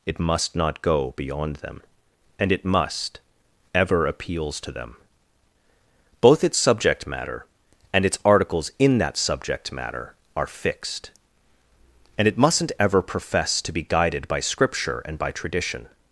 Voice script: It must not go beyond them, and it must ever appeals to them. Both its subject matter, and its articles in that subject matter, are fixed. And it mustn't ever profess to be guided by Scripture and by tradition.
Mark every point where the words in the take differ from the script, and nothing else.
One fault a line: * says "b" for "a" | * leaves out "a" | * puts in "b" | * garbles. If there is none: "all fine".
all fine